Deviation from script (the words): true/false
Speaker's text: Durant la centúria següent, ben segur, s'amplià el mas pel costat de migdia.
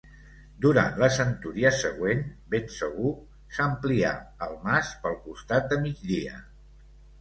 false